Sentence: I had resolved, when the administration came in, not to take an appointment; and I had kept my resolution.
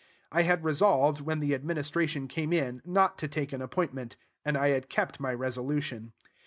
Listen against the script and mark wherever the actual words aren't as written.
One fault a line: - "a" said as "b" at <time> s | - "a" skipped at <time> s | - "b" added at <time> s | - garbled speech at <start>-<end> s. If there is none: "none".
none